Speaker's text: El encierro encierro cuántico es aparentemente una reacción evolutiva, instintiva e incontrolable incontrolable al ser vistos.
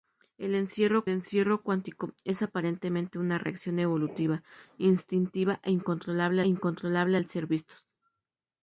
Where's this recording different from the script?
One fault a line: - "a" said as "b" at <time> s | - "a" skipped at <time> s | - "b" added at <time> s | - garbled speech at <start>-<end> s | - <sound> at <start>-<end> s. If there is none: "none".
none